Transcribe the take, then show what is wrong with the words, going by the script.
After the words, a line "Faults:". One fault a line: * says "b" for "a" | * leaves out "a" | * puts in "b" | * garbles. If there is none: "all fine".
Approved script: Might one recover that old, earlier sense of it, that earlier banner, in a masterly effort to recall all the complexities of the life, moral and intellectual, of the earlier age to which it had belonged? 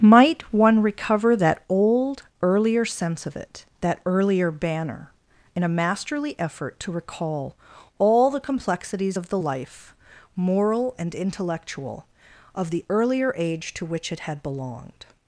Might one recover that old, earlier sense of it, that earlier banner, in a masterly effort to recall all the complexities of the life, moral and intellectual, of the earlier age to which it had belonged?
Faults:
all fine